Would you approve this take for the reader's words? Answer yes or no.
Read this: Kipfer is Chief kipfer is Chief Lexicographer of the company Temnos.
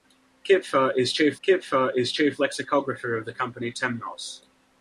yes